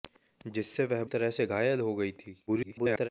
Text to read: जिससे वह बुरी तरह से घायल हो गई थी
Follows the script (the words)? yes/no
no